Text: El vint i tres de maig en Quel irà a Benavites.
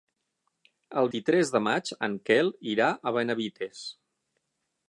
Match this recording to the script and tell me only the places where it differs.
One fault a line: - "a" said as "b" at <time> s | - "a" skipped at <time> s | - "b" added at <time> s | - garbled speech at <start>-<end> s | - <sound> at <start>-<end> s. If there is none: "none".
- "vint" skipped at 1.1 s